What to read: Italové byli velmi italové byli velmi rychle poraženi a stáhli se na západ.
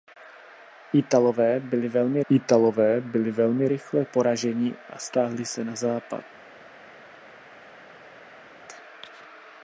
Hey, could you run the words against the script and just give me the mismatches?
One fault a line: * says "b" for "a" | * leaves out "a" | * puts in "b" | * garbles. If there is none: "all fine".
all fine